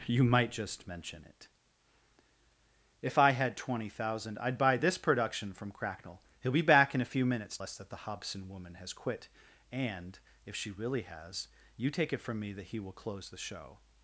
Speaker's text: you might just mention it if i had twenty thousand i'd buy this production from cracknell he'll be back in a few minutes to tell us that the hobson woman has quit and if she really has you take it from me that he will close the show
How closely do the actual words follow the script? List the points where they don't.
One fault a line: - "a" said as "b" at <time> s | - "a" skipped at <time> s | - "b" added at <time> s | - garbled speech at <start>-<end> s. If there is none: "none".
- "to tell" skipped at 7.5 s